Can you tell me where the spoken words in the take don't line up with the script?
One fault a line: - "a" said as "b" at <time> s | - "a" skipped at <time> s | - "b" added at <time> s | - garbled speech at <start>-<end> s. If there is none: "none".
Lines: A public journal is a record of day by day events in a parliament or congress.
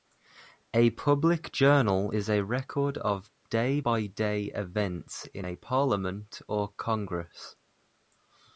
none